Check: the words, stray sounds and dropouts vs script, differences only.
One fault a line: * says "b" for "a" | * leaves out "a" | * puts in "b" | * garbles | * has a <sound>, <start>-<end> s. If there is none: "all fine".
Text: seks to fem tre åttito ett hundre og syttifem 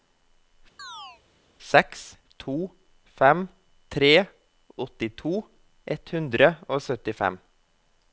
* has a chirp, 0.8-1.2 s